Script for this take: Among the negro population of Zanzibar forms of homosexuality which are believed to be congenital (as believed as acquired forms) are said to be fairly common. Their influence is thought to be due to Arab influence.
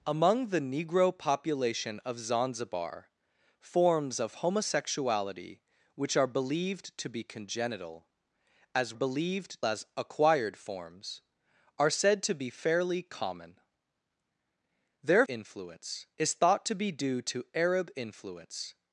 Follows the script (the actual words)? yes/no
yes